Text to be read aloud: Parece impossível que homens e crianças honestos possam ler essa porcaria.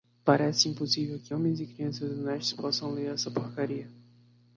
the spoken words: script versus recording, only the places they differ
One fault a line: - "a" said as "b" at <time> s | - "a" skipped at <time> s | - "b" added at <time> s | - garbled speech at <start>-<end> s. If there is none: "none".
none